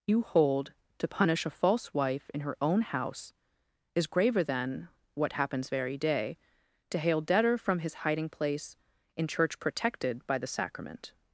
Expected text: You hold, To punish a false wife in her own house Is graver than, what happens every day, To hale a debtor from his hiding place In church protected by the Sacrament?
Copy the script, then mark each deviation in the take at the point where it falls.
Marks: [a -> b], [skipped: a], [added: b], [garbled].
You hold, To punish a false wife in her own house Is graver than, what happens [every -> very] day, To hale [skipped: a] debtor from his hiding place In church protected by the Sacrament?